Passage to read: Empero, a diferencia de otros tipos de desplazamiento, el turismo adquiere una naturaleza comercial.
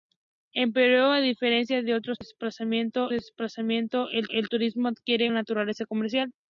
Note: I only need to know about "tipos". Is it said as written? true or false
false